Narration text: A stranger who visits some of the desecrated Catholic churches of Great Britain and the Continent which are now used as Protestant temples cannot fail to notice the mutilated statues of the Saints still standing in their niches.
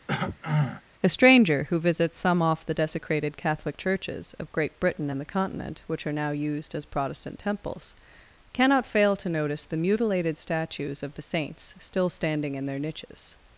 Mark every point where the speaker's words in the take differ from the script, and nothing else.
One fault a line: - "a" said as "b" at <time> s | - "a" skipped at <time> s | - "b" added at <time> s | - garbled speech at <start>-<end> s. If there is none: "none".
- "of" said as "off" at 2.4 s